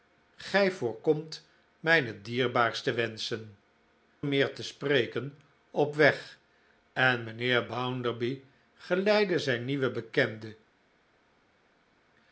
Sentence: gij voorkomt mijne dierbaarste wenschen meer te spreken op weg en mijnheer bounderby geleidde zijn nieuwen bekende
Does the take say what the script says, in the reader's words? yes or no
yes